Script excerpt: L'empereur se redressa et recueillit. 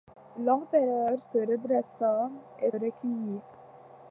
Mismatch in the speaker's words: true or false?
false